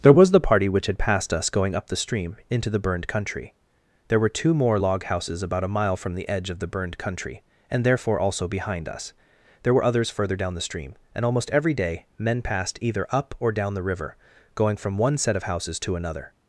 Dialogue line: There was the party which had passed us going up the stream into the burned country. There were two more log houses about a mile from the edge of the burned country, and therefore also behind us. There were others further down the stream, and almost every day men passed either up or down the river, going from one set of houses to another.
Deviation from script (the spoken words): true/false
false